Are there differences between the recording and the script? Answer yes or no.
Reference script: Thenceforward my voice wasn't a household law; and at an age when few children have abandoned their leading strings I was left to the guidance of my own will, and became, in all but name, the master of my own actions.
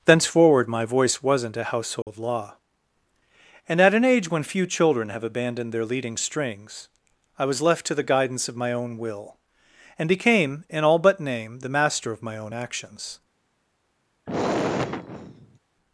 no